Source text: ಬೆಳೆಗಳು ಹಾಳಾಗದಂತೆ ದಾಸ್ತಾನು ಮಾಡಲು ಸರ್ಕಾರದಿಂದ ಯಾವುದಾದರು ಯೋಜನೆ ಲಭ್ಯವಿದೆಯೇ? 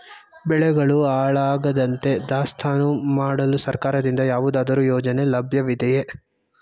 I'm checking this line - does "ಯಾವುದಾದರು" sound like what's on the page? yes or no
yes